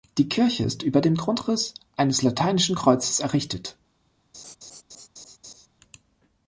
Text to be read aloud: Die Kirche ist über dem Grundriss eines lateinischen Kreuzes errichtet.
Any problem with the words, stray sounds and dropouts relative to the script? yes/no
yes